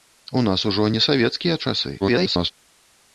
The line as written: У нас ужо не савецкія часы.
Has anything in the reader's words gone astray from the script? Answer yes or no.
yes